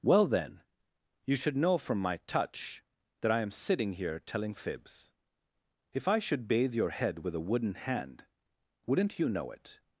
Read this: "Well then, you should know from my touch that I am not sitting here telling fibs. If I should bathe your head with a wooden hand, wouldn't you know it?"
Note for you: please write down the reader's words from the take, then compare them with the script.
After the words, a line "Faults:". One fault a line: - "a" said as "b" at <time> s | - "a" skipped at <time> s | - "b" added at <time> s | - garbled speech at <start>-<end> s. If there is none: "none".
"Well then, you should know from my touch that I am sitting here telling fibs. If I should bathe your head with a wooden hand, wouldn't you know it?"
Faults:
- "not" skipped at 3.5 s